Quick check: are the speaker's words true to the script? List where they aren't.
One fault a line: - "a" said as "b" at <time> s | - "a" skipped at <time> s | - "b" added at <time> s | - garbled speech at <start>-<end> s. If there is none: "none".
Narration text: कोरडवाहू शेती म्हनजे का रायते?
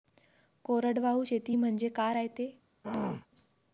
none